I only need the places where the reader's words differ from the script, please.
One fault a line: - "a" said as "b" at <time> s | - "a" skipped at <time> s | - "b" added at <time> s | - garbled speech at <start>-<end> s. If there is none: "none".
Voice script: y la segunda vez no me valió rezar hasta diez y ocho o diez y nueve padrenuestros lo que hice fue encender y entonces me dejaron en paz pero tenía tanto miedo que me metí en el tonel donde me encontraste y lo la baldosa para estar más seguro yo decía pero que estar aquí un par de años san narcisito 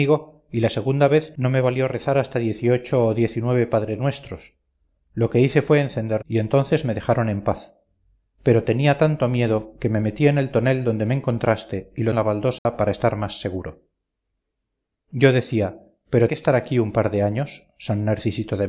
none